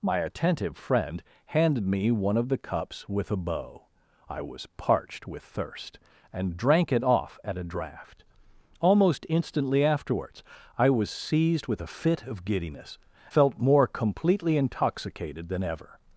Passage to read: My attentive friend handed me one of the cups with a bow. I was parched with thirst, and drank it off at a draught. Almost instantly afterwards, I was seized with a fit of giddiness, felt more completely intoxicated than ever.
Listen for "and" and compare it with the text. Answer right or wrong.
right